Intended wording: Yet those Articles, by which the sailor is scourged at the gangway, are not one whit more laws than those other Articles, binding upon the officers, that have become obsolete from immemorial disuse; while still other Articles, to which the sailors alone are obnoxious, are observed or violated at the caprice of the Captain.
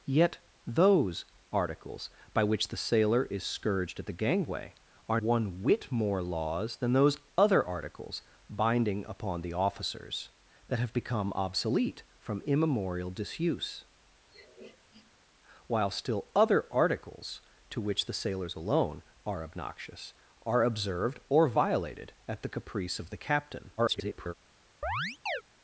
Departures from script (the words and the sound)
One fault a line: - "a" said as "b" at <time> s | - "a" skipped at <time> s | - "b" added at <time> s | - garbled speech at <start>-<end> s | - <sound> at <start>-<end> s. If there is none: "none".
- "not" skipped at 5.2 s
- sniff at 14.3-15.1 s
- garbled speech at 23.8-24.3 s
- chirp at 24.8-25.4 s